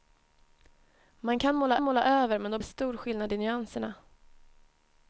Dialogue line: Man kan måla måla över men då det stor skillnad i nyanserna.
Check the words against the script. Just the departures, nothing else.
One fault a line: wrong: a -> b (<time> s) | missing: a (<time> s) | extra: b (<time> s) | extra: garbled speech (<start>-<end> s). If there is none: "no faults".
no faults